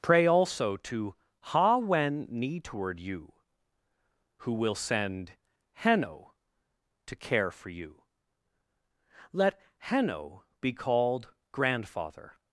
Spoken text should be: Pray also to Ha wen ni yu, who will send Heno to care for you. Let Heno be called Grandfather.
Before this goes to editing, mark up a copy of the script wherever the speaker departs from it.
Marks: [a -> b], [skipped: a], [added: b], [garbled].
Pray also to Ha wen ni [yu, -> toward you] who will send Heno to care for you. Let Heno be called Grandfather.